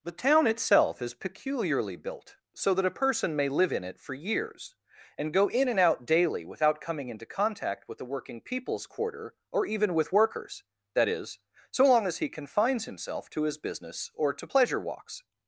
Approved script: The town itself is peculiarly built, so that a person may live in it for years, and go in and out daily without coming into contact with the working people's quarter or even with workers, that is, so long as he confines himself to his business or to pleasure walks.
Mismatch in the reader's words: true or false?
false